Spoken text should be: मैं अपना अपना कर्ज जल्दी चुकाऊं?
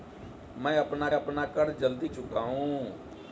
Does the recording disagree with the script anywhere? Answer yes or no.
no